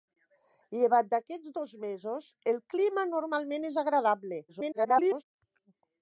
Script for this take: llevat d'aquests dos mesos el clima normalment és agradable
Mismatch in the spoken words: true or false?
true